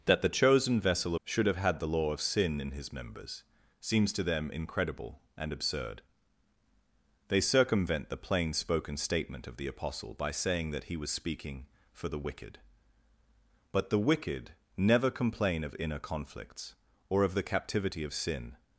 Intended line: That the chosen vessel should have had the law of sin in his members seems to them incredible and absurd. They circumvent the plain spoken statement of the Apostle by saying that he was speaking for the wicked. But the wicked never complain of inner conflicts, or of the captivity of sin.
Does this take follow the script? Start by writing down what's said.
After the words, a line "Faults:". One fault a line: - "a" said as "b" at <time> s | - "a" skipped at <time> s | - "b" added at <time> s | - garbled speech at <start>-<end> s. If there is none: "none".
That the chosen vessel should have had the law of sin in his members seems to them incredible and absurd. They circumvent the plain spoken statement of the Apostle by saying that he was speaking for the wicked. But the wicked never complain of inner conflicts, or of the captivity of sin.
Faults:
none